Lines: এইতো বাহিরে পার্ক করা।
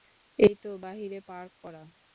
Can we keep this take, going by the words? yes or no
yes